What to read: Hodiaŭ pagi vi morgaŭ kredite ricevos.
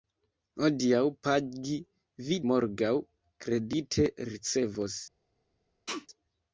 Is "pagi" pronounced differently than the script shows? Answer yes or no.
no